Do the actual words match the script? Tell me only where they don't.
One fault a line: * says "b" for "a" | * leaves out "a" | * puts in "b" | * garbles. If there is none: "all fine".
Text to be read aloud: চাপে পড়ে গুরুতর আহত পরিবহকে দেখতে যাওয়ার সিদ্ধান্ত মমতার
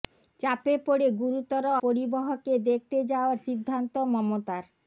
* leaves out "আহত"